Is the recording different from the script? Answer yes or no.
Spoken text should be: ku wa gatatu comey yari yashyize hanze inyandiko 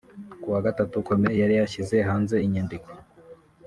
no